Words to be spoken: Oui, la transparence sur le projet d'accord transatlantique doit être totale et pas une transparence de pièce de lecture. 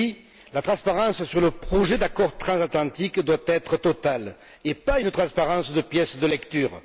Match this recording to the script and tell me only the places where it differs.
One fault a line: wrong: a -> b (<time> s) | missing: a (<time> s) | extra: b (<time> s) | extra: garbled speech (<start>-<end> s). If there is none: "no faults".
no faults